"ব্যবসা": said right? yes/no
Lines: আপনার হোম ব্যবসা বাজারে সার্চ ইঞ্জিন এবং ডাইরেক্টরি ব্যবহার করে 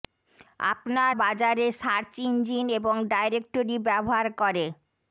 no